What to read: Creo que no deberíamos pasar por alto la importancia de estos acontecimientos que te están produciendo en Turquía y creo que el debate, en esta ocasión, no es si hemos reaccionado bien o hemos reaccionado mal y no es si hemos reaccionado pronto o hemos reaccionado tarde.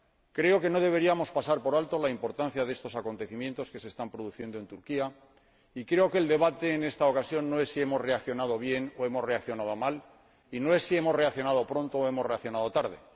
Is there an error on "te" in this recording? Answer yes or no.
yes